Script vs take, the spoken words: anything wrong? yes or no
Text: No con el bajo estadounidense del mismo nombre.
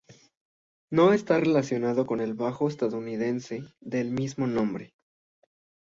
yes